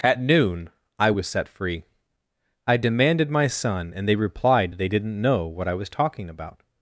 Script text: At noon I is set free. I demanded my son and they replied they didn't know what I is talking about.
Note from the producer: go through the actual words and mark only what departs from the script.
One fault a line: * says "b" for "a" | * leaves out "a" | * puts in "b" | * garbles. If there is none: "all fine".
* says "was" for "is"
* says "was" for "is"